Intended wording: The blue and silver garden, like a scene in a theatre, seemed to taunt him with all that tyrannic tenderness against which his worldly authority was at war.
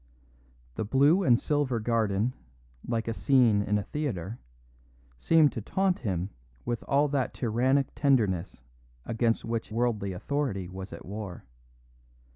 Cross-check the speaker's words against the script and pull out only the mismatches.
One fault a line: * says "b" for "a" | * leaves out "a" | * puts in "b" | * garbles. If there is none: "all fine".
* leaves out "his"